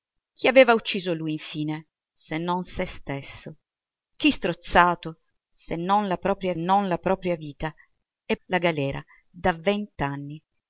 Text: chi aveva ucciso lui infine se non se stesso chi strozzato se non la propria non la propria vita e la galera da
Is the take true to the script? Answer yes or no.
yes